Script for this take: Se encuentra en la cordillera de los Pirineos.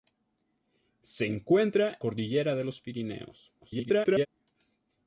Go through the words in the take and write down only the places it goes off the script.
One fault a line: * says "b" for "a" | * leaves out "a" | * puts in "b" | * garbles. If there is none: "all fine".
* leaves out "en la"
* garbles